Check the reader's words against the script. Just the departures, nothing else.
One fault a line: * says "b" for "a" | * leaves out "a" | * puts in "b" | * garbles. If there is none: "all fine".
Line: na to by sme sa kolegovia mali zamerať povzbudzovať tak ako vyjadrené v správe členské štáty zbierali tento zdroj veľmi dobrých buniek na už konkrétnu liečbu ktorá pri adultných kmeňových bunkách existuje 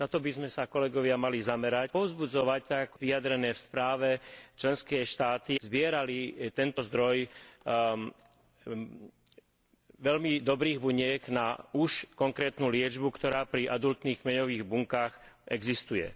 all fine